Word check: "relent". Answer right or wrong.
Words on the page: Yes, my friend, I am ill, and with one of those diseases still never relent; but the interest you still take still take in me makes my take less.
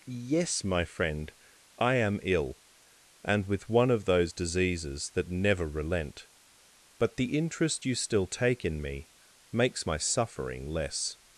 right